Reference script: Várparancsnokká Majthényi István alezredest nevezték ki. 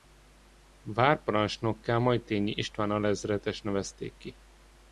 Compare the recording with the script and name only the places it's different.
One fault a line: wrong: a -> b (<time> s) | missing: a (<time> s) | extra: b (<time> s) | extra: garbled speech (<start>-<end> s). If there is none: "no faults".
no faults